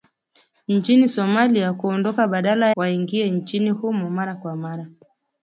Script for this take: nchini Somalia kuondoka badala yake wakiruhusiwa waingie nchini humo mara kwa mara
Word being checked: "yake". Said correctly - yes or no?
no